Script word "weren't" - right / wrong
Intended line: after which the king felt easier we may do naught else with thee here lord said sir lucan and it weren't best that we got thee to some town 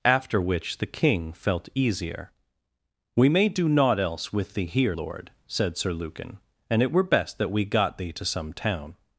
wrong